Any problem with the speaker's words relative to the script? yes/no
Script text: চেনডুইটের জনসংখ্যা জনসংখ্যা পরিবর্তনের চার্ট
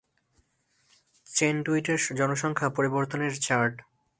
yes